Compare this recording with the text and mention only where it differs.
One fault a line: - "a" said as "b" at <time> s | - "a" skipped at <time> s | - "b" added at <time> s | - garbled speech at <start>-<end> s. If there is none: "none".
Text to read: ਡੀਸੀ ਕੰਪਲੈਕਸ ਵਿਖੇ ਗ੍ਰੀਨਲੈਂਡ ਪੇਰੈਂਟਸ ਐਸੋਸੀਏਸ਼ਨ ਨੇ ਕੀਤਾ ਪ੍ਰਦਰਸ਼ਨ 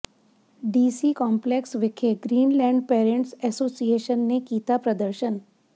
none